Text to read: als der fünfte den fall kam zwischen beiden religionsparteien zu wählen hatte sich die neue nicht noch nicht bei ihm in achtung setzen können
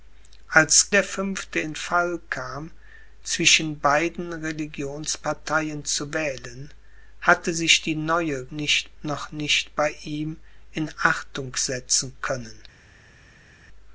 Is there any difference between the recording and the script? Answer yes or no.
no